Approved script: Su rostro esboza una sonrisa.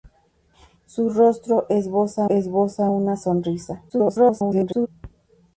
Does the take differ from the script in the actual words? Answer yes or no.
yes